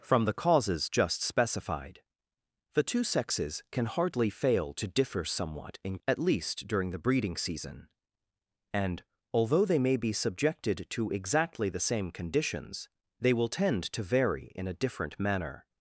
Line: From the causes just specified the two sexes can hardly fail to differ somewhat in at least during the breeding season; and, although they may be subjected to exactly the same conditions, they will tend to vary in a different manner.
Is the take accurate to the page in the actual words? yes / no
yes